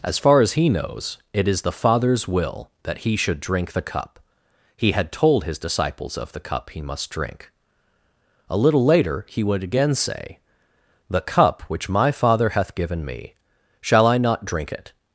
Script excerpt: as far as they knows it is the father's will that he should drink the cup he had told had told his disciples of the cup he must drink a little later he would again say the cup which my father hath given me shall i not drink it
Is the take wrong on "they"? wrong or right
wrong